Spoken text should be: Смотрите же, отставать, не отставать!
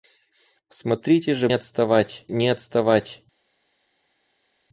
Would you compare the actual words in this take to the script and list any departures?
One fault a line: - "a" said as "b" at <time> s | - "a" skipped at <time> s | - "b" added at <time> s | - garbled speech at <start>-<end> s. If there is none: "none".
none